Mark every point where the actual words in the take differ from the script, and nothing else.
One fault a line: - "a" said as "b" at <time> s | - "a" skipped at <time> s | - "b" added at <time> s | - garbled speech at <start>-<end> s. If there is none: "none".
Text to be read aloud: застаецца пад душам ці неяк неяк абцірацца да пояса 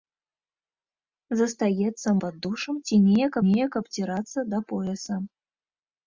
none